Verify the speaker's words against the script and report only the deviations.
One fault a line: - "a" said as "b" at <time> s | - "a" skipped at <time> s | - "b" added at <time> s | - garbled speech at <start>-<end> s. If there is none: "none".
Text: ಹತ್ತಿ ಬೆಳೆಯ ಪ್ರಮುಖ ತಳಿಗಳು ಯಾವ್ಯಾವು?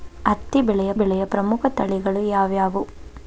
- "ಬೆಳೆಯ" added at 0.9 s